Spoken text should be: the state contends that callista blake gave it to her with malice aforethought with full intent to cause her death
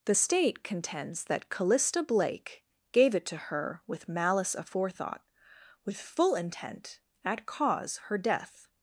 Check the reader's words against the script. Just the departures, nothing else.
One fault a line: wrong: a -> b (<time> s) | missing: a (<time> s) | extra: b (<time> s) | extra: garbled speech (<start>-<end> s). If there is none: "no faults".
wrong: to -> at (7.2 s)